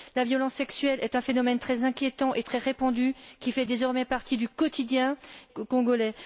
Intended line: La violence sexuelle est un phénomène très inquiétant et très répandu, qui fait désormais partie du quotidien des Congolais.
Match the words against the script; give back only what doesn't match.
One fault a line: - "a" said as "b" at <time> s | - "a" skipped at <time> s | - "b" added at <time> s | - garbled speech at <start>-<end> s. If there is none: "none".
- "des" skipped at 5.2 s